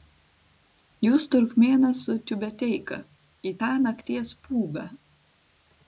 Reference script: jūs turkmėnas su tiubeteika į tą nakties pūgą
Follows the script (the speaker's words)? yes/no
yes